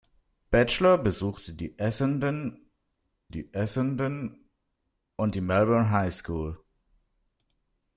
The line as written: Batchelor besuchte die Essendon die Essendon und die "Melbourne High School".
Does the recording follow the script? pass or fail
pass